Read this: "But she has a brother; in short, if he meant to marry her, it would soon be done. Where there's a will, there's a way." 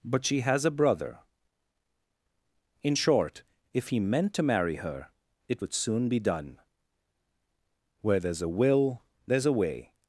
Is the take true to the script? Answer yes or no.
yes